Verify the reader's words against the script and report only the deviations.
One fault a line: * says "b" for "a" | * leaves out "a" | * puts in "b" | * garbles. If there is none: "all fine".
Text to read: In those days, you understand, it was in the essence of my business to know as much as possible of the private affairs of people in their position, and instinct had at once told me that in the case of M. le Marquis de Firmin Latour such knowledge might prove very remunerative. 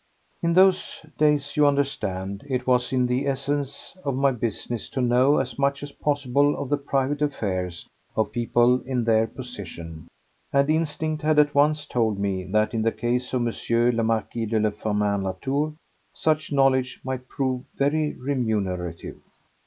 all fine